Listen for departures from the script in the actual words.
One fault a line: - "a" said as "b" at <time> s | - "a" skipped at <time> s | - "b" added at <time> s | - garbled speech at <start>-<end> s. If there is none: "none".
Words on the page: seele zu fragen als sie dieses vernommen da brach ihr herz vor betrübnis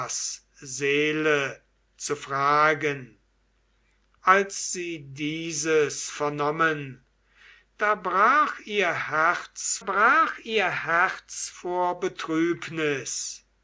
- "brach ihr herz" added at 9.8 s